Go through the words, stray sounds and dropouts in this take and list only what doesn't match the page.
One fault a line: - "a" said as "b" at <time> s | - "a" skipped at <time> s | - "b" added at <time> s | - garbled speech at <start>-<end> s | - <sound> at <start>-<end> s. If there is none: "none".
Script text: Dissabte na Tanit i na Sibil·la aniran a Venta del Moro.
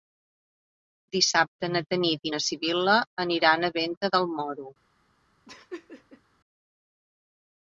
- laugh at 5.5-6.2 s